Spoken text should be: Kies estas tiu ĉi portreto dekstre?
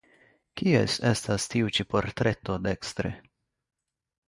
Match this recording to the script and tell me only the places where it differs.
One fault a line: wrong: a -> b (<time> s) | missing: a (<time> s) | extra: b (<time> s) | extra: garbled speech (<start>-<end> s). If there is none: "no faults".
no faults